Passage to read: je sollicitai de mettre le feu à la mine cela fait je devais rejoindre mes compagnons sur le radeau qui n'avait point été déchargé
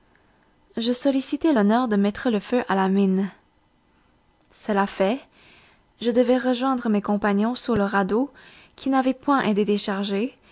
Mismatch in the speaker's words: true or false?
true